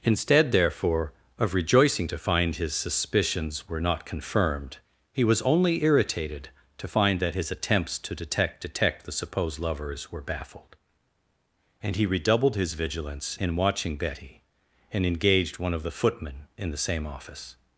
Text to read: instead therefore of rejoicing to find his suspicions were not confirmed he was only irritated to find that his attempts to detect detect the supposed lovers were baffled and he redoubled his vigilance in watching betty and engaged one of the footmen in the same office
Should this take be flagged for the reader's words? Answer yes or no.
no